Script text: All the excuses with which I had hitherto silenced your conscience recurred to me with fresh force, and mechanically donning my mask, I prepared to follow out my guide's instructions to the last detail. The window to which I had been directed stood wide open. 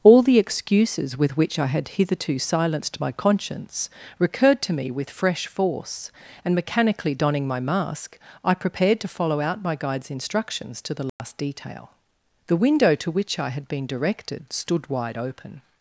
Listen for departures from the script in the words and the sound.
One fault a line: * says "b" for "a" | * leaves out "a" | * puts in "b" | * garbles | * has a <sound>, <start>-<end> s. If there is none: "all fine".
* says "my" for "your"
* has a dropout, 11.1-11.2 s